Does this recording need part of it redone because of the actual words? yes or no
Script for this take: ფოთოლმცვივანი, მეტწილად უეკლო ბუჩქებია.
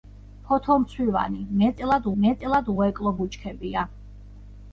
yes